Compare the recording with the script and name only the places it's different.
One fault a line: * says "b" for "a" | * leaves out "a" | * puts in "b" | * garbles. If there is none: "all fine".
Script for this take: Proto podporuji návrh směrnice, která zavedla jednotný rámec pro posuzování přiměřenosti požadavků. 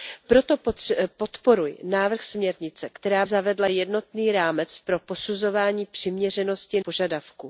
all fine